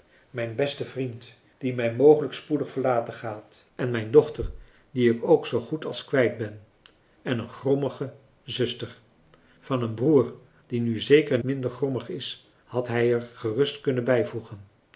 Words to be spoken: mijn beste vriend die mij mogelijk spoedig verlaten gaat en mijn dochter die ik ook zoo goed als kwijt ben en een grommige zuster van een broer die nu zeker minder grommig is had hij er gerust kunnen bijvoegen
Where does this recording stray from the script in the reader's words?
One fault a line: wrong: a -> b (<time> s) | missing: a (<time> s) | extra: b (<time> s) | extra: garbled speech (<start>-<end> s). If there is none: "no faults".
no faults